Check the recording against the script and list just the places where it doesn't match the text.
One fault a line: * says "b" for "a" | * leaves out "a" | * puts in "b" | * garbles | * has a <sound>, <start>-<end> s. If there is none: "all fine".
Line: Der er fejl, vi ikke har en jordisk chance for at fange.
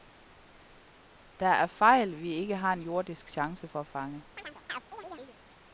* has a chirp, 4.4-5.4 s